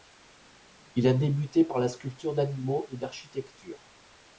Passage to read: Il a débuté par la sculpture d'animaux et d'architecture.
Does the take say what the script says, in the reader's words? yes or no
yes